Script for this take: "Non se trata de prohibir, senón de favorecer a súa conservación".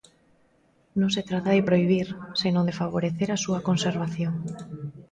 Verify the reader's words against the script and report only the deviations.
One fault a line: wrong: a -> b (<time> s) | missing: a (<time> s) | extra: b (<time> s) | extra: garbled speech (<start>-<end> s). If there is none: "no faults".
no faults